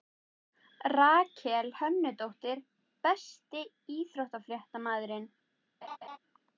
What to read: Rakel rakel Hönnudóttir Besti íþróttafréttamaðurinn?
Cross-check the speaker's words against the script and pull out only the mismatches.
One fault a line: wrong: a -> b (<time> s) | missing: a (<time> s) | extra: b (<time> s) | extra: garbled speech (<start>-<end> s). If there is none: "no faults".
missing: rakel (1.7 s)